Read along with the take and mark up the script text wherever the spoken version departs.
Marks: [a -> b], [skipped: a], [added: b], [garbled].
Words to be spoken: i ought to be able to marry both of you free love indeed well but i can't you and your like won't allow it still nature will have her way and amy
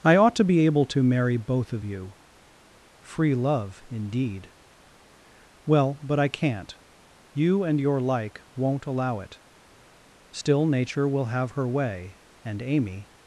i ought to be able to marry both of you free love indeed well but i can't you and your like won't allow it still nature will have her way and amy